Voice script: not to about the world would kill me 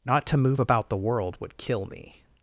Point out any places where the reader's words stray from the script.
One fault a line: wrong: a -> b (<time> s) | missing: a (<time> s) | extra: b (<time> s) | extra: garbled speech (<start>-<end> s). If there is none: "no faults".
extra: move (0.4 s)